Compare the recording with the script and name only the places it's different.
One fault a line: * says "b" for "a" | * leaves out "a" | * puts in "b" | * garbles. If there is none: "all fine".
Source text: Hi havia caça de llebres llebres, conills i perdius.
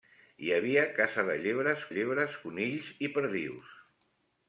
all fine